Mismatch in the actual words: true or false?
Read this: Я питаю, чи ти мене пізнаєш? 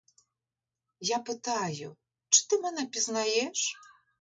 false